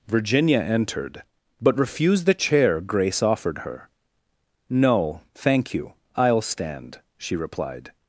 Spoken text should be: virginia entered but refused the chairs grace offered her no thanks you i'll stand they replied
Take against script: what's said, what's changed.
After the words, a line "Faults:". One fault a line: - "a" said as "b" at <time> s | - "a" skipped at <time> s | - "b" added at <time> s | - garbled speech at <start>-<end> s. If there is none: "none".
virginia entered but refused the chair grace offered her no thank you i'll stand she replied
Faults:
- "chairs" said as "chair" at 2.3 s
- "thanks" said as "thank" at 5.3 s
- "they" said as "she" at 7.2 s